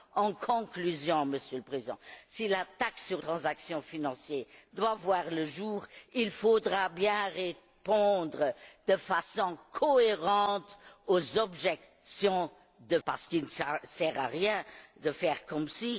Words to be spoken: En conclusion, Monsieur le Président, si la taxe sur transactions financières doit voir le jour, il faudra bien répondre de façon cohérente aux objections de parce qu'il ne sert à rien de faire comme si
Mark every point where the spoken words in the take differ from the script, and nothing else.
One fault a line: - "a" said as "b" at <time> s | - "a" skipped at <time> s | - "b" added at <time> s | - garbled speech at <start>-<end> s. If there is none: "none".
none